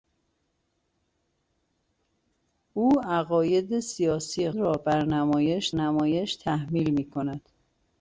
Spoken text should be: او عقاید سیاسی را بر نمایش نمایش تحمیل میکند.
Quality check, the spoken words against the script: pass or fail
pass